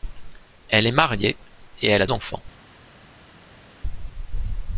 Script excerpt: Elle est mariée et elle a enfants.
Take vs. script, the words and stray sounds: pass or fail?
pass